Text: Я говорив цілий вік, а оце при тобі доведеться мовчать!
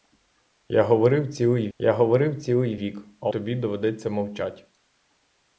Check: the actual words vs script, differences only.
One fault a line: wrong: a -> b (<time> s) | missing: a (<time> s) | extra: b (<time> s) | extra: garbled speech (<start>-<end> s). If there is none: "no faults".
extra: я говорив цілий (1.8 s)
missing: оце при (3.3 s)